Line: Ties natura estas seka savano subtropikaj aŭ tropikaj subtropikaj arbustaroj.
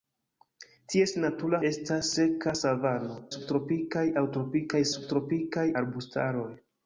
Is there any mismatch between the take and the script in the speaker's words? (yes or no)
no